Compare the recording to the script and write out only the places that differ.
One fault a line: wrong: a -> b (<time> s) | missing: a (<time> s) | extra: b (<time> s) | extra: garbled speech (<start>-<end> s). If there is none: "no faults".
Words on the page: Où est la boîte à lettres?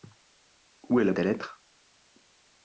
missing: boîte (1.1 s)